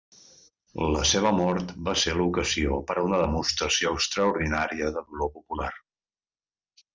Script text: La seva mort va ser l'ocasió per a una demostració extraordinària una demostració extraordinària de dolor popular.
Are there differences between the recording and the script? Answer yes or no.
yes